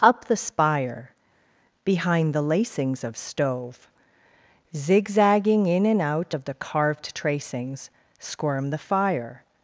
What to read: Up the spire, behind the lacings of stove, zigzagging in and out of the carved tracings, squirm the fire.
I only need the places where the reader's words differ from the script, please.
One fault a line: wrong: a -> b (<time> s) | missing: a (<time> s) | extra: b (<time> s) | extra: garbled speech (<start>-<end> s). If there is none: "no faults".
no faults